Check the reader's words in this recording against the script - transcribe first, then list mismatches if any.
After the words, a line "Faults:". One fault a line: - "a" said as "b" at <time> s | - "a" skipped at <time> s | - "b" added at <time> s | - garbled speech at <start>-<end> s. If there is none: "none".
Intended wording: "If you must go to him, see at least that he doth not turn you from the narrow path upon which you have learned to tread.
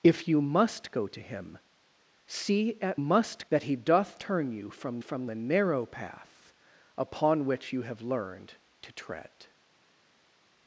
"If you must go to him, see at must that he doth turn you from from the narrow path upon which you have learned to tread.
Faults:
- "least" said as "must" at 3.0 s
- "not" skipped at 4.2 s
- "from" added at 5.0 s